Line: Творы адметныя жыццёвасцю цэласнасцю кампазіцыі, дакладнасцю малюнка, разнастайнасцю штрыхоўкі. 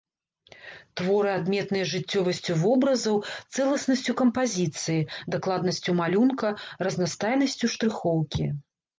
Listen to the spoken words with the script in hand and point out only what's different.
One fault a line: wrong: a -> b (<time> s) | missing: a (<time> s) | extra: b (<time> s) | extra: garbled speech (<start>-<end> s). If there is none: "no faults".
extra: вобразаў (2.6 s)